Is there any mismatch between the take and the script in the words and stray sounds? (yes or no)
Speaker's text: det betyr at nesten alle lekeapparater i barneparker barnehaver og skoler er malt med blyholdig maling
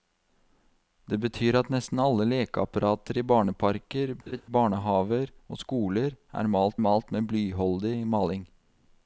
yes